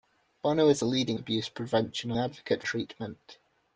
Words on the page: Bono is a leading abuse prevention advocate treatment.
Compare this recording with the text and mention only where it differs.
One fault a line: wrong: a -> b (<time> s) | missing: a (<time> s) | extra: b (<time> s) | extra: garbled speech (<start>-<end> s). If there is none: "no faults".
no faults